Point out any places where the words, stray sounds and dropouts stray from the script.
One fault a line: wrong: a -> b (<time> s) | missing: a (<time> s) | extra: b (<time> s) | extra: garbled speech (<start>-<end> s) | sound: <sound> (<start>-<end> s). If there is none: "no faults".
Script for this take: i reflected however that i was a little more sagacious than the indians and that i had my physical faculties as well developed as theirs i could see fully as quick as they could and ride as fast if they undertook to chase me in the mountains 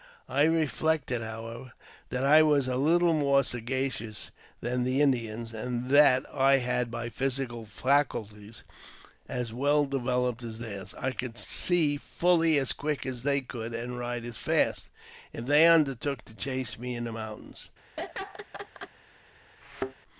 sound: laugh (18.0-18.9 s)
sound: thud (19.6-19.9 s)